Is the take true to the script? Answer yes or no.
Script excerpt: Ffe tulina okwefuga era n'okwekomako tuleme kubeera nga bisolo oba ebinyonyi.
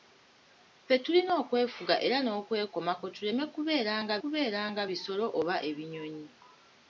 no